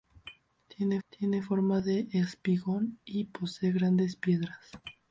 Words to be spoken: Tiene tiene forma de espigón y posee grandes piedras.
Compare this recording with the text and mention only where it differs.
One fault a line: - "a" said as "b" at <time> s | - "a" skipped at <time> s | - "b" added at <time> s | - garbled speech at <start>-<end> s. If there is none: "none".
none